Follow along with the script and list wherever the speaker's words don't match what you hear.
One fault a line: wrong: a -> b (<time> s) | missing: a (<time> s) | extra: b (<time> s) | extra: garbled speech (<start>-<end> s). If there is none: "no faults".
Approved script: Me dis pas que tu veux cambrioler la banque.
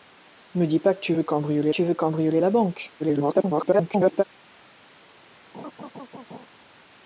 extra: tu veux cambrioler (1.7 s)
extra: garbled speech (3.0-4.2 s)